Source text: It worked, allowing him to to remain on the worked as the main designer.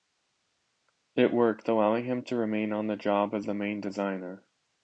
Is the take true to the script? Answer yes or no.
no